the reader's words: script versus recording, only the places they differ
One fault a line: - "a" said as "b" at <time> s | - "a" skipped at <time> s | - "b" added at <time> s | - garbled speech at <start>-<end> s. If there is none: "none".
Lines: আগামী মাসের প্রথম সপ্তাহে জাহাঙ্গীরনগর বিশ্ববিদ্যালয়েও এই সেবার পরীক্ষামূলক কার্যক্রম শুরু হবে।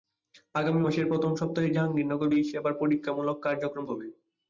- "বিশ্ববিদ্যালয়েও" skipped at 2.3 s
- "শুরু" skipped at 3.8 s